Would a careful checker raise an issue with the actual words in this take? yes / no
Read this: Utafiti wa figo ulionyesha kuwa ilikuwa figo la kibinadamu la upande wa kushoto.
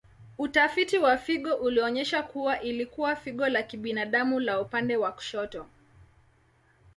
no